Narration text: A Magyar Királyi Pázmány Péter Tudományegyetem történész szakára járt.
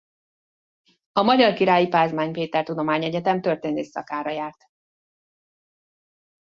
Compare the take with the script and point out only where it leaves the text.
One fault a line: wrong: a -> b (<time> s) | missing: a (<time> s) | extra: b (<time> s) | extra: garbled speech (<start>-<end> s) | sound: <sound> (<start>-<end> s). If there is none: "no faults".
no faults